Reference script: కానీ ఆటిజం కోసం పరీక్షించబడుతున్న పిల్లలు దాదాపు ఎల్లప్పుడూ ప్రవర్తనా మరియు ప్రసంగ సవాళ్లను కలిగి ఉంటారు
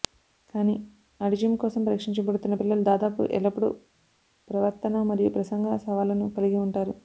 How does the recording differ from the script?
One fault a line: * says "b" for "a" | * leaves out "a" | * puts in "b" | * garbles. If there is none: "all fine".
all fine